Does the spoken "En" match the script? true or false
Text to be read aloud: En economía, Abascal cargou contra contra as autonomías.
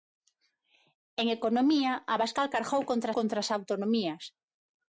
true